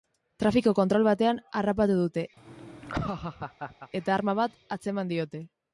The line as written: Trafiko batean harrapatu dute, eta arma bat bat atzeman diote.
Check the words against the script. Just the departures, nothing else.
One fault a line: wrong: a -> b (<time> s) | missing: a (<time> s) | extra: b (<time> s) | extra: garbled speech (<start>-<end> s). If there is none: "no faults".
extra: kontrol (0.8 s)
missing: bat (4.6 s)